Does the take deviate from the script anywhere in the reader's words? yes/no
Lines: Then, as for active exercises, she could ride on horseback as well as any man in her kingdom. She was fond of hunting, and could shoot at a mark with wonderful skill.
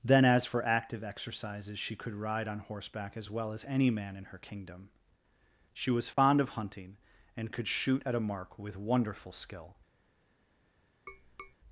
no